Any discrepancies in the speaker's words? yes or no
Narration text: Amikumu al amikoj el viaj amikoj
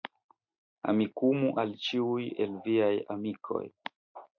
yes